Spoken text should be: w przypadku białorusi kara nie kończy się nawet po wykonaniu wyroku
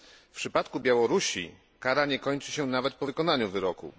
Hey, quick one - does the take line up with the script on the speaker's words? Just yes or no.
yes